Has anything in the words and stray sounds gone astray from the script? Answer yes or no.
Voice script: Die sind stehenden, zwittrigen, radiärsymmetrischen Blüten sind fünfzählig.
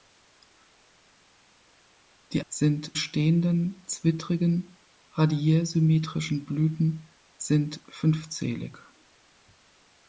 no